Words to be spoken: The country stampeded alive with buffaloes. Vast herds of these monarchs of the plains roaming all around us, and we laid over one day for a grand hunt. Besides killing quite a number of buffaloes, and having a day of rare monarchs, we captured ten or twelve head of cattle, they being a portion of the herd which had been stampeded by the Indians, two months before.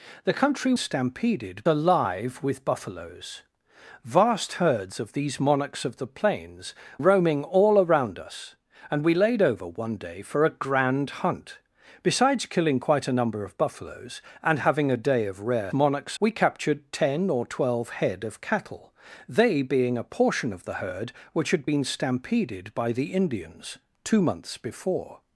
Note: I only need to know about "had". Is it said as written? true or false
true